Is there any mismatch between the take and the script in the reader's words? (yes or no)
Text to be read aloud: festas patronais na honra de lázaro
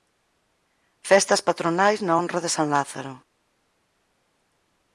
yes